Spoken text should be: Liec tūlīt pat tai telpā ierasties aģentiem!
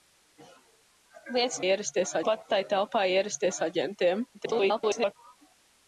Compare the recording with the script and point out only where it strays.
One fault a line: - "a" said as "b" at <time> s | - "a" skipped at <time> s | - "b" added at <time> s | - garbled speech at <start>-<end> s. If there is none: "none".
- "tūlīt" said as "ierasties" at 1.7 s
- garbled speech at 4.3-5.1 s